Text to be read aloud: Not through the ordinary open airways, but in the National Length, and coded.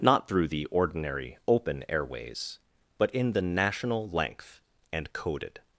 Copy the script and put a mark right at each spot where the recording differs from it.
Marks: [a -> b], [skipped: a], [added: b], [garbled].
Not through the ordinary open airways, but in the National Length, and coded.